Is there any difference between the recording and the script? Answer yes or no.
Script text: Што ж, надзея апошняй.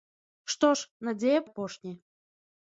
no